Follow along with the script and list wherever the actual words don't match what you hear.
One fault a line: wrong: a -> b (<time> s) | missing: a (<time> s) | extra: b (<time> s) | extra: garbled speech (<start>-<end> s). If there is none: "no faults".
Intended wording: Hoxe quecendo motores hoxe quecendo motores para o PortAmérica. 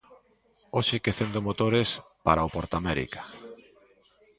missing: hoxe quecendo motores (1.9 s)